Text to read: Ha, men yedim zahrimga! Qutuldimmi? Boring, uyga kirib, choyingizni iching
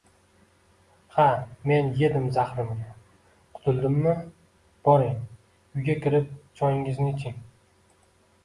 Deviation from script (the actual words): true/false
false